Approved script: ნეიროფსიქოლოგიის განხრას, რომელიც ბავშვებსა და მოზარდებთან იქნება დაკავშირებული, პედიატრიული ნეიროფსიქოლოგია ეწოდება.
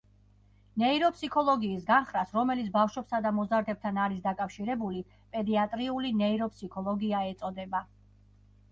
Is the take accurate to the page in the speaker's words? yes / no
no